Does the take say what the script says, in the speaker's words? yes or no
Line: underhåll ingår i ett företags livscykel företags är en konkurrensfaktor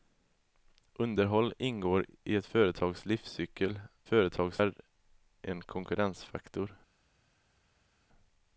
yes